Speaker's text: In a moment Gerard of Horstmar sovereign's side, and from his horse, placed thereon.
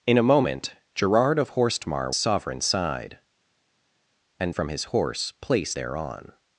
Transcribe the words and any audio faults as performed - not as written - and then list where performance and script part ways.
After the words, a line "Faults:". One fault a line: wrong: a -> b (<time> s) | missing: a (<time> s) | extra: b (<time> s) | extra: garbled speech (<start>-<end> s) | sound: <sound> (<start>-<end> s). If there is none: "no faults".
In a moment Gerard of Horstmar sovereign's side, and from his horse, placed thereon.
Faults:
no faults